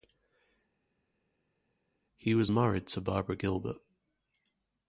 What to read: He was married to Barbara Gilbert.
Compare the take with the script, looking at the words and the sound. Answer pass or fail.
pass